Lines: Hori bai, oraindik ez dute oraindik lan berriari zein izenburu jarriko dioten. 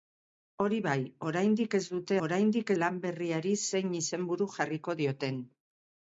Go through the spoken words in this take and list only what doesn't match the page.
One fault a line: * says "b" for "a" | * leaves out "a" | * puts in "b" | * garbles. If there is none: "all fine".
all fine